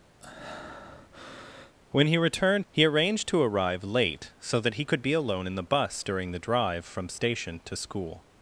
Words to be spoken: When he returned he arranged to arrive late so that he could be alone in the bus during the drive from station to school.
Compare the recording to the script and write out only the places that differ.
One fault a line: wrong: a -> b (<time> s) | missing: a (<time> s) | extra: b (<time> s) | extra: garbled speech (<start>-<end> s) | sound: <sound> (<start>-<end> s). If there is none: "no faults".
sound: breath (0.2-1.7 s)